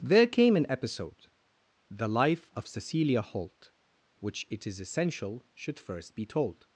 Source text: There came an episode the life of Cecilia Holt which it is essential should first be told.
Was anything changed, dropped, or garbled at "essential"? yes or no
no